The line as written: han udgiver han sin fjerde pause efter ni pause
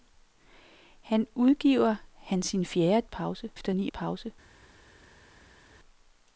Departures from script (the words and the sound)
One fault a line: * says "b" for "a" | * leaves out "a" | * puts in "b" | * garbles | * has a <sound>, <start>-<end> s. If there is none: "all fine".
all fine